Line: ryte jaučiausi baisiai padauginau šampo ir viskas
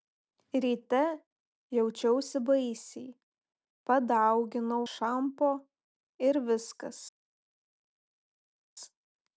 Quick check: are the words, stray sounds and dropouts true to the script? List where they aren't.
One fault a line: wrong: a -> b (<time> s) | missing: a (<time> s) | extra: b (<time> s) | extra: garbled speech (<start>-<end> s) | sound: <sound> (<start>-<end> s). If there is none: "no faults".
no faults